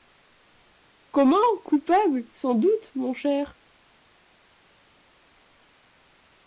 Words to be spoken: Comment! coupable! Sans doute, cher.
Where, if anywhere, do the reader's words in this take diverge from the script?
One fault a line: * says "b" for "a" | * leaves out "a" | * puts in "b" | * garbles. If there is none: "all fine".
* puts in "mon"